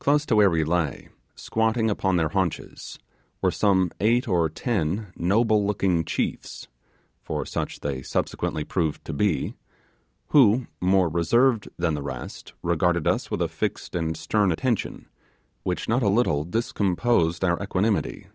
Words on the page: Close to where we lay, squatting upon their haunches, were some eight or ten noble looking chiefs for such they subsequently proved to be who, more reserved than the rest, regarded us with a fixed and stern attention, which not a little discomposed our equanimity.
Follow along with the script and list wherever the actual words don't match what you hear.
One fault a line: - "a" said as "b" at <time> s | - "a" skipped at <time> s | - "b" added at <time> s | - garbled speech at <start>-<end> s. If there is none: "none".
none